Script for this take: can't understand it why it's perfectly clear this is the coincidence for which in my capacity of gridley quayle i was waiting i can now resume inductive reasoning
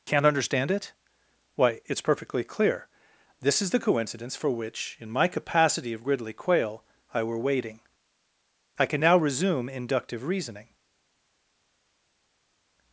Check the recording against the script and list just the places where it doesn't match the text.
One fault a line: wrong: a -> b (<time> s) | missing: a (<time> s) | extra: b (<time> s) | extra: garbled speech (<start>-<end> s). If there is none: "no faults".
wrong: was -> were (7.2 s)